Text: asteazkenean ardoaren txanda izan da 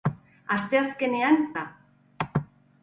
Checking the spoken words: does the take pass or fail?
fail